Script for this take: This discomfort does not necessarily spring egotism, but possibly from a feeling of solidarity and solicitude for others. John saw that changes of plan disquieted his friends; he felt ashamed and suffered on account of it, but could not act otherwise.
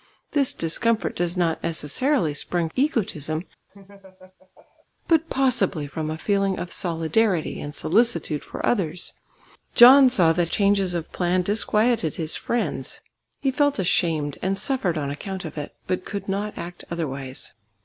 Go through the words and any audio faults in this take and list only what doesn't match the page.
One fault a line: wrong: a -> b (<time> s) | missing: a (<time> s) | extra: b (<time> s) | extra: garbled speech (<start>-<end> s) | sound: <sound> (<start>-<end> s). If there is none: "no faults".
sound: laugh (3.7-4.9 s)